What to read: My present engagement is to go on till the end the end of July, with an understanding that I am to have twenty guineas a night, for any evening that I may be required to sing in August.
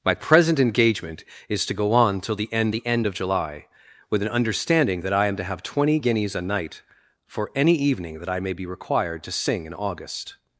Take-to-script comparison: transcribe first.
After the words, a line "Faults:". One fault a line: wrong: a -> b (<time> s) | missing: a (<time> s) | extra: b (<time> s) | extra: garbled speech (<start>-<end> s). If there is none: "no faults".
My present engagement is to go on till the end the end of July, with an understanding that I am to have twenty guineas a night, for any evening that I may be required to sing in August.
Faults:
no faults